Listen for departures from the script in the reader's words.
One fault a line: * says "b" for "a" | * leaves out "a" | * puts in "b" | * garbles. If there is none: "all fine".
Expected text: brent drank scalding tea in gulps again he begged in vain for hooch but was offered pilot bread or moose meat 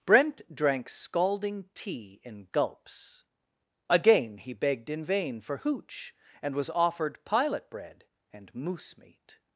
* says "and" for "but"
* says "and" for "or"